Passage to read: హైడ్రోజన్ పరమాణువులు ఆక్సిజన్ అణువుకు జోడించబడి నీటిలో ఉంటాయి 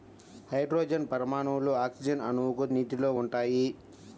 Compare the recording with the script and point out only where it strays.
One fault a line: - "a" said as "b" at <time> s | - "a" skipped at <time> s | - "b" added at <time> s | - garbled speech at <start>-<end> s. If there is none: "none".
- "జోడించబడి" skipped at 2.6 s